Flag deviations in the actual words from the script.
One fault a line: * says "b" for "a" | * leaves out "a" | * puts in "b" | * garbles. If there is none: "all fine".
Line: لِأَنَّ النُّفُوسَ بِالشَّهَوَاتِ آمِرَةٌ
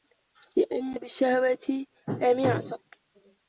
* leaves out "النُّفُوسَ"